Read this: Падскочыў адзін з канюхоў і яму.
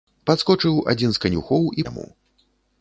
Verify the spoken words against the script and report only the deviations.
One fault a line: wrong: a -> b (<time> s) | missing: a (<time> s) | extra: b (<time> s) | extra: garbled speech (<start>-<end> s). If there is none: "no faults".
no faults